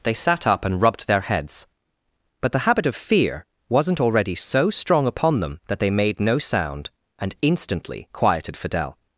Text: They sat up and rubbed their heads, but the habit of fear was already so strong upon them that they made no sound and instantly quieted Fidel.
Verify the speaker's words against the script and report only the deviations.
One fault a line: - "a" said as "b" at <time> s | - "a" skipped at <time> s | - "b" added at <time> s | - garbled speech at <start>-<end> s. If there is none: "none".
- "was" said as "wasn't" at 3.7 s